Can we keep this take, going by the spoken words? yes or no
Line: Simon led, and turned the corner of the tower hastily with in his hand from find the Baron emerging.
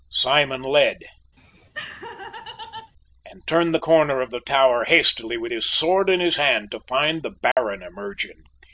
no